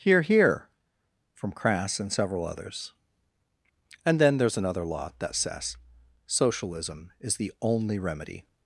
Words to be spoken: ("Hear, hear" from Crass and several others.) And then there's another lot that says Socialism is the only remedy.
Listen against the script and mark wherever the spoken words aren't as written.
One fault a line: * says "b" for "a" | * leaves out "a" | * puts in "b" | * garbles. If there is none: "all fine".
all fine